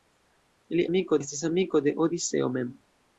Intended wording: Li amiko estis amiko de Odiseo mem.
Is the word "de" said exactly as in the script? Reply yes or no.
yes